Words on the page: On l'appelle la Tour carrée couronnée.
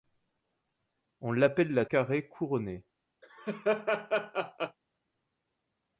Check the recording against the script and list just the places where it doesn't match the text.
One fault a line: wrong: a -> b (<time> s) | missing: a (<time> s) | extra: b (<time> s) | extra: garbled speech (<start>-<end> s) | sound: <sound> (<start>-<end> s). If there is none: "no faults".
missing: Tour (1.9 s)
sound: laugh (3.2-4.8 s)